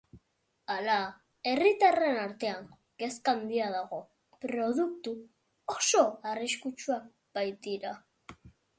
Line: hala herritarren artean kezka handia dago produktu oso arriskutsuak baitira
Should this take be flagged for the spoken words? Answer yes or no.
no